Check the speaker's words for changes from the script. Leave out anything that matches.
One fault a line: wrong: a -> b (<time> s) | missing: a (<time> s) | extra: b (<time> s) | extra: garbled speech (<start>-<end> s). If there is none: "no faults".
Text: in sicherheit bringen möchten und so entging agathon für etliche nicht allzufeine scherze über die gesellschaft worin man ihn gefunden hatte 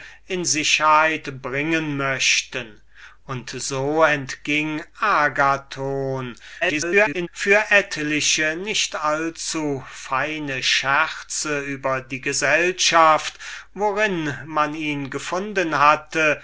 extra: garbled speech (6.6-7.3 s)